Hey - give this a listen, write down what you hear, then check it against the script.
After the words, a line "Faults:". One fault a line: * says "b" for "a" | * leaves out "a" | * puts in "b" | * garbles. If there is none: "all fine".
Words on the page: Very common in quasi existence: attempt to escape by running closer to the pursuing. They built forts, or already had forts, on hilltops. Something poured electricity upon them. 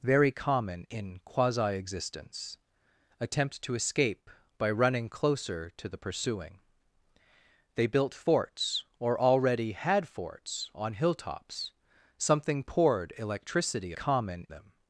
Very common in quasi existence: attempt to escape by running closer to the pursuing. They built forts, or already had forts, on hilltops. Something poured electricity common them.
Faults:
* says "common" for "upon"